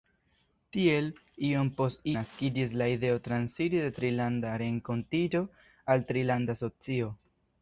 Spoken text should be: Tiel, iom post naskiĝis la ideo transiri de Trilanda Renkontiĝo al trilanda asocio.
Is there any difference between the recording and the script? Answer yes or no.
no